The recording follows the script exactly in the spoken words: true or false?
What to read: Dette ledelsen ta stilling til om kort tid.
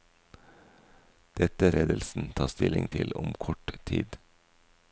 true